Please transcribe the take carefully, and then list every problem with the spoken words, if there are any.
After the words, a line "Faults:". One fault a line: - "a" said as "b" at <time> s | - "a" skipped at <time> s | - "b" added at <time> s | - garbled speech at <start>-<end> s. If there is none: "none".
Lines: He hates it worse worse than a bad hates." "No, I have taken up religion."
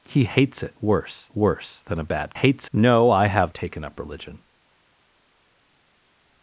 He hates it worse worse than a bad hates." "No, I have taken up religion."
Faults:
none